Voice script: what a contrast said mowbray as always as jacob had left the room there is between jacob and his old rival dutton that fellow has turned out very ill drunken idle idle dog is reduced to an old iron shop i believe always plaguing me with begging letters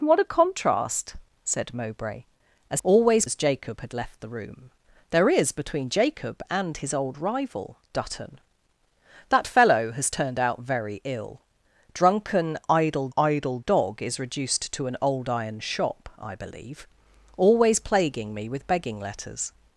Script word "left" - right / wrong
right